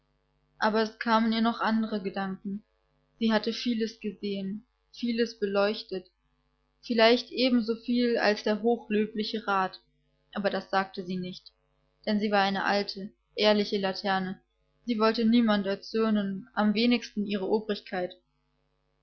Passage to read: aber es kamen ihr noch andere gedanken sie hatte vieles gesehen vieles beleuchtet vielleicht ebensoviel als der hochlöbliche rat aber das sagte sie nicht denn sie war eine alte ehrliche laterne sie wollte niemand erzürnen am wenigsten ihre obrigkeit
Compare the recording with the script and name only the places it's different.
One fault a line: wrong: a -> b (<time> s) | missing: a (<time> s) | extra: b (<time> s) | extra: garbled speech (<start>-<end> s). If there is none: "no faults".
no faults